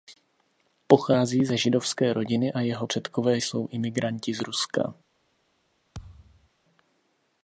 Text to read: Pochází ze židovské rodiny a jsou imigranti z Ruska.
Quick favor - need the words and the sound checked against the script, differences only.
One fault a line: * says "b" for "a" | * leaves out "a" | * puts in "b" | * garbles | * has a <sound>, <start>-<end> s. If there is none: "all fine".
* puts in "jeho předkové"
* has a thud, 5.9-6.5 s